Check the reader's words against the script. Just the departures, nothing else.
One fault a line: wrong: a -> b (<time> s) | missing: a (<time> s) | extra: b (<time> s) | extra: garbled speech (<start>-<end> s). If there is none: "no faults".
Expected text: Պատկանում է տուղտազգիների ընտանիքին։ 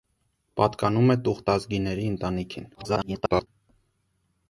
extra: garbled speech (2.7-3.5 s)